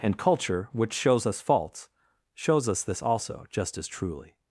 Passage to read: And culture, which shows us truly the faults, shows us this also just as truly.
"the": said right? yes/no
no